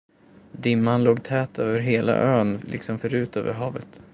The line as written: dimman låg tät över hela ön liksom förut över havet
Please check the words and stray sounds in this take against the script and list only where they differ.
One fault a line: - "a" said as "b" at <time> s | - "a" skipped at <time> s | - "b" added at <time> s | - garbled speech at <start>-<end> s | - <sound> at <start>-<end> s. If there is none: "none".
none